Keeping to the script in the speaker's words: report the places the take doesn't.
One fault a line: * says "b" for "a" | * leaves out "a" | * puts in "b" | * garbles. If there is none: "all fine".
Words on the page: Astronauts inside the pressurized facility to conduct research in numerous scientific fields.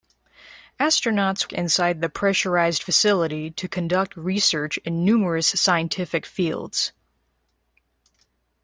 all fine